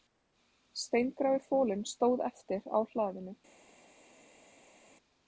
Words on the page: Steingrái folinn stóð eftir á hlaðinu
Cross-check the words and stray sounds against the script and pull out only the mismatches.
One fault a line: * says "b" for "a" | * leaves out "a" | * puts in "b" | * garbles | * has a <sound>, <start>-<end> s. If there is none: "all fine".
all fine